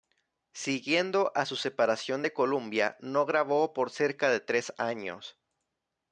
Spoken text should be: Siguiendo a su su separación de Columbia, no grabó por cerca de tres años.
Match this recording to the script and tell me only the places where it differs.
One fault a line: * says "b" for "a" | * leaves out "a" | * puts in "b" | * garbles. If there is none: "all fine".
* leaves out "su"